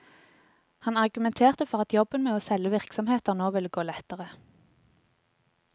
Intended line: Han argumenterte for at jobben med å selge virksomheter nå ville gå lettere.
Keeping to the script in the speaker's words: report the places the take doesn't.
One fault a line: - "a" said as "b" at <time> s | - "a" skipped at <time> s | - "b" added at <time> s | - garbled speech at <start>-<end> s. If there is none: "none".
none